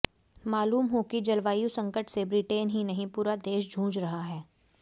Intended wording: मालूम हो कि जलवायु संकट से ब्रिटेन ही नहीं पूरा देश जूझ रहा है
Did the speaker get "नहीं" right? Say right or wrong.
right